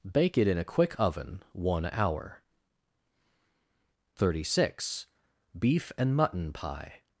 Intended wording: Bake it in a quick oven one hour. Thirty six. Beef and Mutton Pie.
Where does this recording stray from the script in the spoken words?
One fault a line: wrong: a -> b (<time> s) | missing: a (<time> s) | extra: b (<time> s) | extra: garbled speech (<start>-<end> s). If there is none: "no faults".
no faults